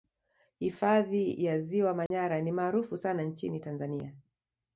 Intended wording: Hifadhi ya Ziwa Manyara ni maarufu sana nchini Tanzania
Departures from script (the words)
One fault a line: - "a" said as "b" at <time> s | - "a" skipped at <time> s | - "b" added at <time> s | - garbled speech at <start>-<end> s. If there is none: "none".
none